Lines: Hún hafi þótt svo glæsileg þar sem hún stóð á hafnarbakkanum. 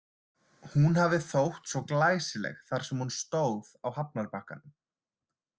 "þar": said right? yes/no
yes